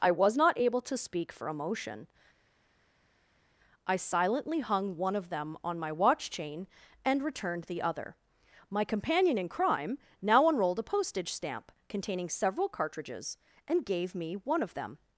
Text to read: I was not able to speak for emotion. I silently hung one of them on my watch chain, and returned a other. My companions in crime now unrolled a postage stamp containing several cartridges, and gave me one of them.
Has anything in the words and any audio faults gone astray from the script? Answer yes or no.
yes